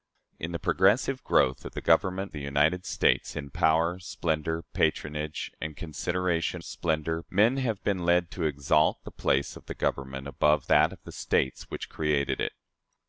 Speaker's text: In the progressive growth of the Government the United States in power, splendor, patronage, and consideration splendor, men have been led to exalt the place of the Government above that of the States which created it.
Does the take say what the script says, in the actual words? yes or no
yes